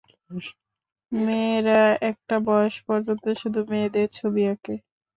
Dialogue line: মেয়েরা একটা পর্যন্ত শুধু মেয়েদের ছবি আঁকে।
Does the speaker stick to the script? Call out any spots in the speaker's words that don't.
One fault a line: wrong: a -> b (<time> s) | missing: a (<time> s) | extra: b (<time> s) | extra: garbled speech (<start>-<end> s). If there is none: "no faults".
extra: বয়স (2.5 s)